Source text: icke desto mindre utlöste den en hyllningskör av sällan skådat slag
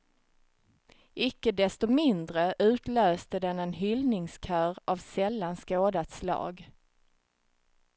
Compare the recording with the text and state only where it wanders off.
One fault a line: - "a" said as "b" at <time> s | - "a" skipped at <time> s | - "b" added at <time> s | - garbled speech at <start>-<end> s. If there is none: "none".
none